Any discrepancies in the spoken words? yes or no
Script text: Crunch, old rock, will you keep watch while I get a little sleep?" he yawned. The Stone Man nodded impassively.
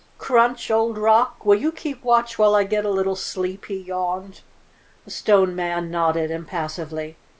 no